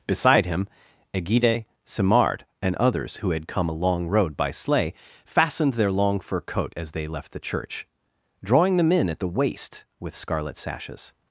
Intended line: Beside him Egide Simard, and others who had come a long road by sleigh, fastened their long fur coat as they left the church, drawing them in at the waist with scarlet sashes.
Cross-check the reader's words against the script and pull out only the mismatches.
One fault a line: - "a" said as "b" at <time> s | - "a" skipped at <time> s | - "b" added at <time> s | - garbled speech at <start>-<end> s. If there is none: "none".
none